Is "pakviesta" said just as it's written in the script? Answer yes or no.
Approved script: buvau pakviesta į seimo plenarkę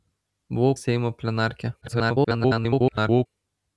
no